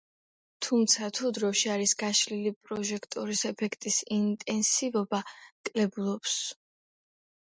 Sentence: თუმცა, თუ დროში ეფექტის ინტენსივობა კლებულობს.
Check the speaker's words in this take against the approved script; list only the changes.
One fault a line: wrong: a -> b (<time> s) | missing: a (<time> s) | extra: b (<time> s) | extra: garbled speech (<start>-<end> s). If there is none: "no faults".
extra: არის გაშლილი პროჟექტორის (1.7 s)